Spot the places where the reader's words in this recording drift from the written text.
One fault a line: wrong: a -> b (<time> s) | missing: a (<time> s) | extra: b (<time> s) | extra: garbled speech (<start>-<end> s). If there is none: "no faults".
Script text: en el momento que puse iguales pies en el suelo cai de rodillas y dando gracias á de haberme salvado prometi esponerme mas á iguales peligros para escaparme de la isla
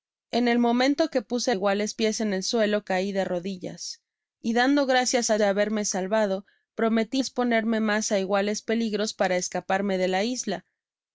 no faults